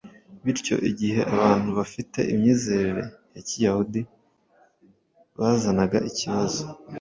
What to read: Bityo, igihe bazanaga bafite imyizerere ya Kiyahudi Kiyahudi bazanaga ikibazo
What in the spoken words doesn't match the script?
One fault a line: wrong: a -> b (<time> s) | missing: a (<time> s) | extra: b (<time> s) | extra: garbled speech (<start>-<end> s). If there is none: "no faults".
wrong: bazanaga -> abantu (1.4 s)
missing: Kiyahudi (4.0 s)